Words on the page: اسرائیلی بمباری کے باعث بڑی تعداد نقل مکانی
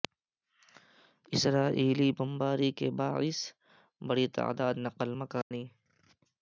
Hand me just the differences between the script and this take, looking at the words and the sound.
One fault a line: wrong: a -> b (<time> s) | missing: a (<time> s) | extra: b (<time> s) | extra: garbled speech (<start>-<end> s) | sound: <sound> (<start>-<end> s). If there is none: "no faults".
sound: dropout (5.4-5.5 s)